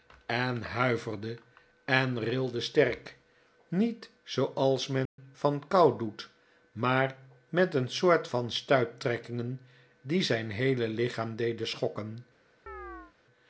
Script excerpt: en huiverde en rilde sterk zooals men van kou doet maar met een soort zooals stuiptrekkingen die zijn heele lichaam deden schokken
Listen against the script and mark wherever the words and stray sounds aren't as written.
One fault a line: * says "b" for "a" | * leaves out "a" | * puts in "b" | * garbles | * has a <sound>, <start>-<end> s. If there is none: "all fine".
* puts in "niet"
* has a dropout, 5.1-5.2 s
* says "van" for "zooals"
* has a chirp, 12.7-13.1 s